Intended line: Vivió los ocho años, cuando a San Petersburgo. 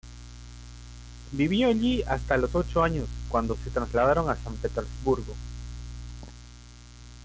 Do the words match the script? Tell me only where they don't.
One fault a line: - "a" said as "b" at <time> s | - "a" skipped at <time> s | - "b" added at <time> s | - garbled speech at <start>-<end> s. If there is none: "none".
- "allí hasta" added at 1.7 s
- "se trasladaron" added at 3.6 s